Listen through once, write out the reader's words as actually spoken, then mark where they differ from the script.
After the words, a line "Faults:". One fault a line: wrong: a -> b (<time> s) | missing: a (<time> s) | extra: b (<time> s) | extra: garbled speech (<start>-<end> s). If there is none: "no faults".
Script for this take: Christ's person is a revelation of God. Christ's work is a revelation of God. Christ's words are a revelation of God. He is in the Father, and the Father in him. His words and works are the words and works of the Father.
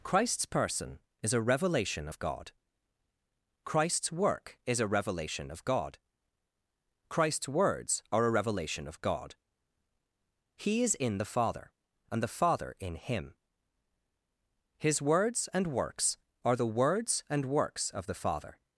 Christ's person is a revelation of God. Christ's work is a revelation of God. Christ's words are a revelation of God. He is in the Father, and the Father in him. His words and works are the words and works of the Father.
Faults:
no faults